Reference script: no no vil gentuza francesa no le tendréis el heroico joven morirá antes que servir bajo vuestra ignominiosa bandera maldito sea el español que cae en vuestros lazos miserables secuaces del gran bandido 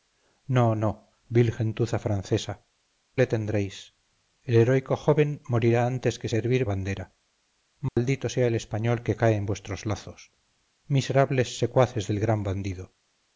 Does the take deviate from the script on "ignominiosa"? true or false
true